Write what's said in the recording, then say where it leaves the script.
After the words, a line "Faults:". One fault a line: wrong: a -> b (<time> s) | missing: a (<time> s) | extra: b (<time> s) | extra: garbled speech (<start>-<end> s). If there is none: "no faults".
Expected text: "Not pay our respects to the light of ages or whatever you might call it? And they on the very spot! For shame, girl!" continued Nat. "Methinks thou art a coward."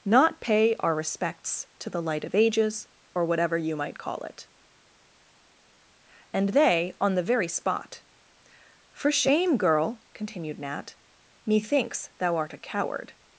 "Not pay our respects to the light of ages or whatever you might call it? And they on the very spot! For shame, girl!" continued Nat. "Methinks thou art a coward."
Faults:
no faults